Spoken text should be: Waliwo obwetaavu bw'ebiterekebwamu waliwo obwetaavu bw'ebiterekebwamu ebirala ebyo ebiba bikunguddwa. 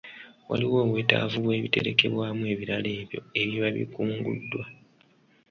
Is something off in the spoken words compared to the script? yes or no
yes